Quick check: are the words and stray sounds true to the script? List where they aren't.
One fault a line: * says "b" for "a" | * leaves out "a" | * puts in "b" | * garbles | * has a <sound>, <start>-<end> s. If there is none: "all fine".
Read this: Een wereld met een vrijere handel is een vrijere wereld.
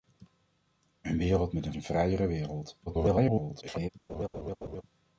* leaves out "vrijere handel is"
* garbles
* has a laugh, 4.1-4.8 s